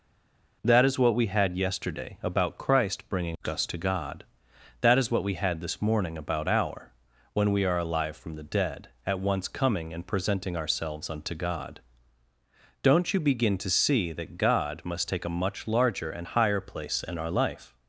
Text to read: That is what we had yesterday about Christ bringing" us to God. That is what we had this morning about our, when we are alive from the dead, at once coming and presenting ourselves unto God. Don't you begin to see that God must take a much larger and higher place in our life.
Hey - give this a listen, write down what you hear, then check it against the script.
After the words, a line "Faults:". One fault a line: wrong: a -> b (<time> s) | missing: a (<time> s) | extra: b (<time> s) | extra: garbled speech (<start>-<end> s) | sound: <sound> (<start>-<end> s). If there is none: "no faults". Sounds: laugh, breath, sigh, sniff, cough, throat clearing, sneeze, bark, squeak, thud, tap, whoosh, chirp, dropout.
That is what we had yesterday about Christ bringing" us to God. That is what we had this morning about our, when we are alive from the dead, at once coming and presenting ourselves unto God. Don't you begin to see that God must take a much larger and higher place in our life.
Faults:
no faults